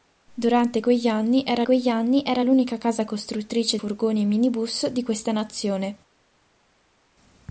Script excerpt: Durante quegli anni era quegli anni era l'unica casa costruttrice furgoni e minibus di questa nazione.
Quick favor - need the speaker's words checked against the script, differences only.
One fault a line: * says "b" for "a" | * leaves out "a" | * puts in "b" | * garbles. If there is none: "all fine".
all fine